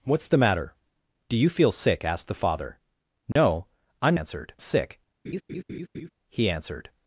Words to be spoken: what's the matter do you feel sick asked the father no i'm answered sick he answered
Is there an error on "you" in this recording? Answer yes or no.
no